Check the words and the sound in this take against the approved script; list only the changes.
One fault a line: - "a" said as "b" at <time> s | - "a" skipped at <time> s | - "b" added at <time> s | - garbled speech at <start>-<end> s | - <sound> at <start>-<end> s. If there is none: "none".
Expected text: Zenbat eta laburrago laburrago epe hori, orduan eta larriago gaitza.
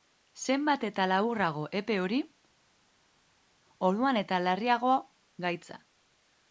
- "laburrago" skipped at 1.6 s